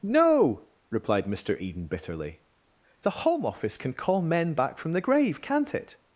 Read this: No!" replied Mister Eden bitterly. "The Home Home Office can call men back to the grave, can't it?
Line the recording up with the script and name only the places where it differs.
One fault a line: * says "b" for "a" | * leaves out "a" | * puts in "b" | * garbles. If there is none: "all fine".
* leaves out "Home"
* says "from" for "to"